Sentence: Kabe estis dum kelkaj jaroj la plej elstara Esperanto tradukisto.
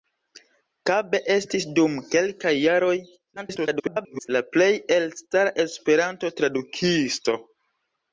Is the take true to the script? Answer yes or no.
no